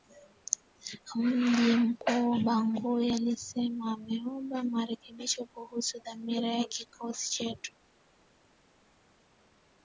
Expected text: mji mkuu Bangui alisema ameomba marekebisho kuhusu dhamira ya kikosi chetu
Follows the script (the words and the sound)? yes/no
yes